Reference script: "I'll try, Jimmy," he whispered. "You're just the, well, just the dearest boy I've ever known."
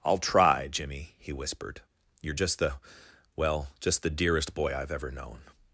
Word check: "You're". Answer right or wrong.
right